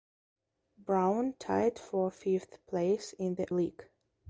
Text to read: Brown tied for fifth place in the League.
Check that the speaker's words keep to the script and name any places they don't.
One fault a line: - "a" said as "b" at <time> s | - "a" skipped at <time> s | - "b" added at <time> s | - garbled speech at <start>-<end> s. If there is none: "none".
none